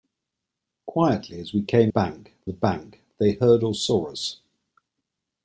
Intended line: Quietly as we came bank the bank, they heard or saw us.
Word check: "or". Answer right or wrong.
right